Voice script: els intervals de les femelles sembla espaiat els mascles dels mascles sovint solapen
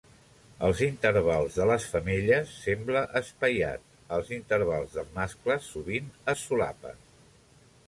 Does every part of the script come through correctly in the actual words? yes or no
no